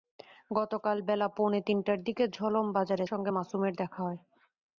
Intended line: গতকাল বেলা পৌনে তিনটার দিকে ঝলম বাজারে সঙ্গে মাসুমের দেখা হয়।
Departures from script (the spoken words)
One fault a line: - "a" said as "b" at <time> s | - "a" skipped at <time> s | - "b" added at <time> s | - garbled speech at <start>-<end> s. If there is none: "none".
none